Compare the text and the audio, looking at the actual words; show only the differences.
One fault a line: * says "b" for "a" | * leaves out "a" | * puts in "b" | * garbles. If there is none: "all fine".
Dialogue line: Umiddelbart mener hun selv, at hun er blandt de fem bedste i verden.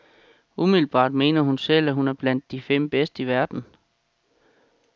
all fine